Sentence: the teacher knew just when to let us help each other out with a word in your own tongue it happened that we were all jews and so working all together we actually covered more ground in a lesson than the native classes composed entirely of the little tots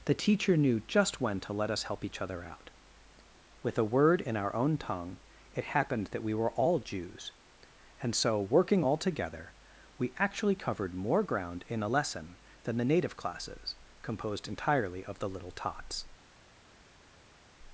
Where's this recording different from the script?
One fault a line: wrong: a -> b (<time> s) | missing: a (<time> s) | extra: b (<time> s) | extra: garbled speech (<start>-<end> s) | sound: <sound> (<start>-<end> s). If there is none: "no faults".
wrong: your -> our (4.3 s)